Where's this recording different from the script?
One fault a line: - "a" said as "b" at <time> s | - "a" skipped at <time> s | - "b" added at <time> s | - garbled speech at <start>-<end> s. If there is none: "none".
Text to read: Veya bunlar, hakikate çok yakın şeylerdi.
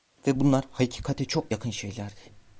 - "Veya" said as "Ve" at 0.3 s